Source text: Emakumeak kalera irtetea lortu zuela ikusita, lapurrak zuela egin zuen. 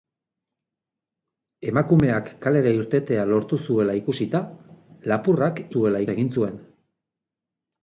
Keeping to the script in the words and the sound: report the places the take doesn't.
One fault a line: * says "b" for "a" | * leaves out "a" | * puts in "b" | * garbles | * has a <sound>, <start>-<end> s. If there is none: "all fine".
all fine